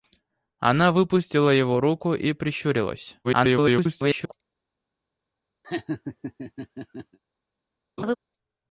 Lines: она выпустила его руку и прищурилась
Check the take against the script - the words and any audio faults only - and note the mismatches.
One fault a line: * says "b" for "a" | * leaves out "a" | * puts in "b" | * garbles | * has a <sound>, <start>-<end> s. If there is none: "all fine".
* garbles
* has a laugh, 5.6-7.2 s
* has a laugh, 8.0-8.2 s